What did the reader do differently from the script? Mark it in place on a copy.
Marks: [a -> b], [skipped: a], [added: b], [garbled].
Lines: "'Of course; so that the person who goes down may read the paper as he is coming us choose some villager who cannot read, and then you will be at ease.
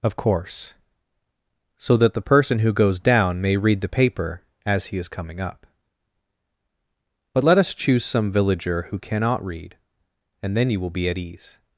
"'Of course; so that the person who goes down may read the paper as he is coming [added: up But let] us choose some villager who cannot read, and then you will be at ease.